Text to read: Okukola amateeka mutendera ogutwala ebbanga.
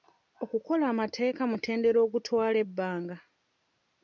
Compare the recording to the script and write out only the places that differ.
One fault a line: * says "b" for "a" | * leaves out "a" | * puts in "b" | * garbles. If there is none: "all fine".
all fine